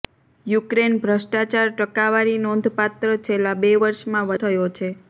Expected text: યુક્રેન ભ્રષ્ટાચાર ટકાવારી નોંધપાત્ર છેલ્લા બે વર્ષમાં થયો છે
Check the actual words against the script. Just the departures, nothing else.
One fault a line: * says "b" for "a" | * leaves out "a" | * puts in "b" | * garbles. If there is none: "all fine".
all fine